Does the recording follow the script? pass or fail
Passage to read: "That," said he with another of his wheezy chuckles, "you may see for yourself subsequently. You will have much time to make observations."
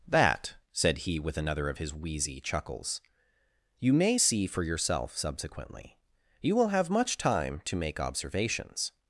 pass